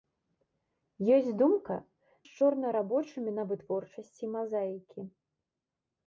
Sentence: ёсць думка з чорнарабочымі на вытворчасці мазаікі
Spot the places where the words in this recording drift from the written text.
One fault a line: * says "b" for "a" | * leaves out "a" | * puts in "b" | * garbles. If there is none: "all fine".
all fine